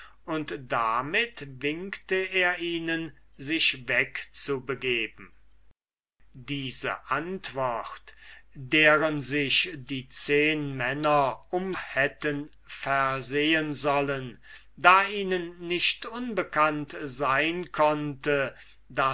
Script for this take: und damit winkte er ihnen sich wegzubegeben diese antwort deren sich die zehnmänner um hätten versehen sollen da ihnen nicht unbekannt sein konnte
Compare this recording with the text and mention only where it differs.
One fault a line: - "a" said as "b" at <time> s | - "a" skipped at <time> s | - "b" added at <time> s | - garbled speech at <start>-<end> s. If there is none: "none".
none